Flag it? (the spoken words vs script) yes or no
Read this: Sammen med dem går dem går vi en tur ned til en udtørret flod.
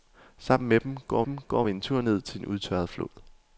no